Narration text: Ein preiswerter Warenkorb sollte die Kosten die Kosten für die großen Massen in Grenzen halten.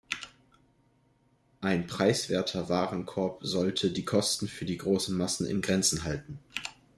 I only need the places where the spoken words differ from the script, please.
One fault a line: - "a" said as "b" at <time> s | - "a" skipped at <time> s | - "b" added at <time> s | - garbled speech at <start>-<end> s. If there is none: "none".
- "die Kosten" skipped at 4.5 s